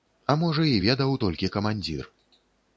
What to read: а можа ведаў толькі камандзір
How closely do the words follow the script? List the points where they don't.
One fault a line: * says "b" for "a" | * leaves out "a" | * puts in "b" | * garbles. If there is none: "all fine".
* puts in "і"